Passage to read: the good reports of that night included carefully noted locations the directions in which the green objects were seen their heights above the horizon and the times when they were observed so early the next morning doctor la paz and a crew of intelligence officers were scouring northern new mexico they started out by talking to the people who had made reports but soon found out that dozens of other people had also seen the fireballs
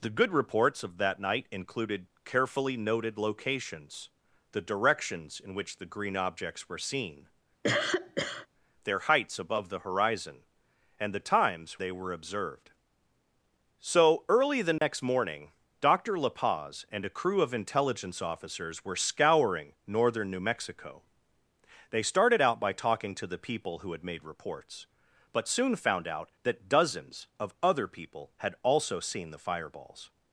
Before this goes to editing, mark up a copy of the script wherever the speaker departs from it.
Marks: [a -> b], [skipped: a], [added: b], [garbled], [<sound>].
the good reports of that night included carefully noted locations the directions in which the green objects were seen [cough] their heights above the horizon and the times [skipped: when] they were observed so early the next [dropout] morning doctor la paz and a crew of intelligence officers were scouring northern new mexico they started out by talking to the people who had made reports but soon found out that dozens of other people had also seen the fireballs